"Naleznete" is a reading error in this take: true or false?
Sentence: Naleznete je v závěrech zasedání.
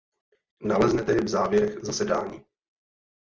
false